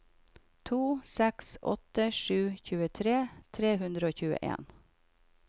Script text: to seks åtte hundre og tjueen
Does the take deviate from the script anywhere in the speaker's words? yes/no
yes